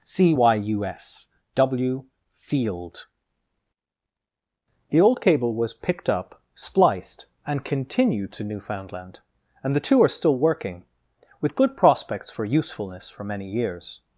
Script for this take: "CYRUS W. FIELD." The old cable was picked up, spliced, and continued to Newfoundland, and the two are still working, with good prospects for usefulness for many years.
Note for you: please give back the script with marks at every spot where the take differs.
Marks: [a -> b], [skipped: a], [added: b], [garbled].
["CYRUS -> C y u s] W. FIELD." The old cable was picked up, spliced, and continued to Newfoundland, and the two are still working, with good prospects for usefulness for many years.